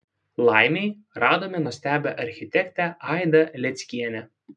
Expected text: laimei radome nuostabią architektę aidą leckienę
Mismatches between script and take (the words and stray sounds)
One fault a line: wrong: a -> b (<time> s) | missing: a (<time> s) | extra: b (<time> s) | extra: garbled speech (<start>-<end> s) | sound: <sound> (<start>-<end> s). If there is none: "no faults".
no faults